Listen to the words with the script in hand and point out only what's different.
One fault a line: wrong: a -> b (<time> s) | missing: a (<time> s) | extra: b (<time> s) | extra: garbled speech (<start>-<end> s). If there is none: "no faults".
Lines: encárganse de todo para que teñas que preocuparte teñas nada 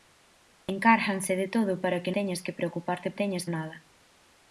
no faults